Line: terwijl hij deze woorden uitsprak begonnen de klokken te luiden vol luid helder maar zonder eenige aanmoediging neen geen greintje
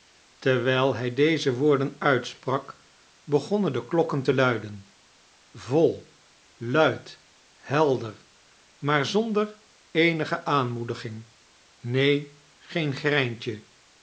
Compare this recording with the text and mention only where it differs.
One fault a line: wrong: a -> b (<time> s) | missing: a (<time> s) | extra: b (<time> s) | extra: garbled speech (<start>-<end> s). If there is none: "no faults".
no faults